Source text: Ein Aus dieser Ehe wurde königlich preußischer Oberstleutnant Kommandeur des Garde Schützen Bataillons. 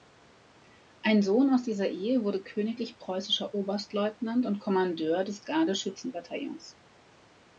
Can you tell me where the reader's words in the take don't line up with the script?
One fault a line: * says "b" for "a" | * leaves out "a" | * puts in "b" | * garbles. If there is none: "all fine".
* puts in "Sohn"
* puts in "und"